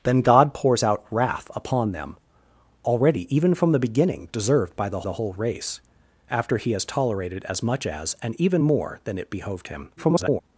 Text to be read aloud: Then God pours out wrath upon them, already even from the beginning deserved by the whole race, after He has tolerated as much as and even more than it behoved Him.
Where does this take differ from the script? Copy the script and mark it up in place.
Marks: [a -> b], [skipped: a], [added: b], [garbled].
Then God pours out wrath upon them, already even from the beginning deserved by the [added: the] whole race, after He has tolerated as much as and even more than it behoved Him. [garbled]